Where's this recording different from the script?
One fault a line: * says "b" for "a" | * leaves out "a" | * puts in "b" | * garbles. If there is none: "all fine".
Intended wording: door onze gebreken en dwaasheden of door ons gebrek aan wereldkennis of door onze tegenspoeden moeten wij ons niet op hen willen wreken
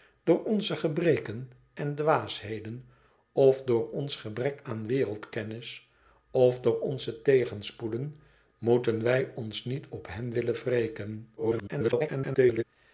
* garbles